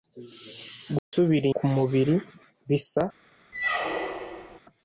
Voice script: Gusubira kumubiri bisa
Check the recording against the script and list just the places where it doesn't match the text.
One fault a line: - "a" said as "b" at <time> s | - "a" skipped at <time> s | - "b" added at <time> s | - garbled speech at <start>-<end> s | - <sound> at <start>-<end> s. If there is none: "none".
- dropout at 1.0-1.1 s
- squeak at 3.5-4.6 s